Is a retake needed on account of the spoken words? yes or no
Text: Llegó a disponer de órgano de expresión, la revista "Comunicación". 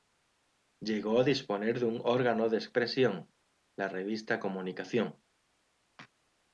yes